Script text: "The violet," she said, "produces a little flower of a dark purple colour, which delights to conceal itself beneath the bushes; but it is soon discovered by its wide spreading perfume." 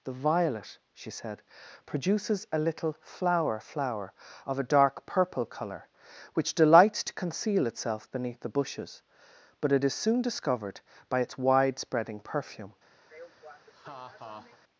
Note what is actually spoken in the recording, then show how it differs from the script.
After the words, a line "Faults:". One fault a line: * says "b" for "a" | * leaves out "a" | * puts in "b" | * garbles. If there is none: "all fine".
"The violet," she said, "produces a little flower flower of a dark purple colour, which delights to conceal itself beneath the bushes; but it is soon discovered by its wide spreading perfume."
Faults:
* puts in "flower"